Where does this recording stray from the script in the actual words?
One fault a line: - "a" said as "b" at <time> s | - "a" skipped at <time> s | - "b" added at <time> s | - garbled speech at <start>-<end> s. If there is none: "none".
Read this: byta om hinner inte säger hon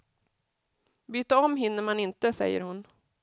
- "man" added at 1.8 s